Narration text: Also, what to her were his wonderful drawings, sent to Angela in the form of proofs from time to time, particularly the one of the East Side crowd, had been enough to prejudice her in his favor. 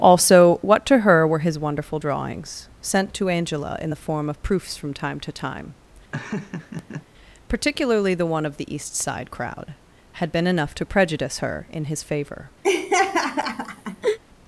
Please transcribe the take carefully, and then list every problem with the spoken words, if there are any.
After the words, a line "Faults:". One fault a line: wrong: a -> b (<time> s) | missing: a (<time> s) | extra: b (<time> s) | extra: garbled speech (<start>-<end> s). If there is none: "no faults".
Also, what to her were his wonderful drawings, sent to Angela in the form of proofs from time to time, particularly the one of the East Side crowd, had been enough to prejudice her in his favor.
Faults:
no faults